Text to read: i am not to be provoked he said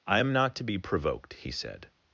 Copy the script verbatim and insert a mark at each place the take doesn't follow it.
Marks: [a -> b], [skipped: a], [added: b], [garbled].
i am not to be provoked he said